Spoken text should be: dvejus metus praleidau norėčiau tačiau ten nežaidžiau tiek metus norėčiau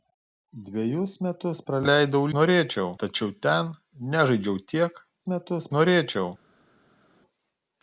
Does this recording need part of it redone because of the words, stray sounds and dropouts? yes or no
no